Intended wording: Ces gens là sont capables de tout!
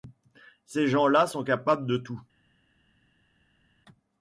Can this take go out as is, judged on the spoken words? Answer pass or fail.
pass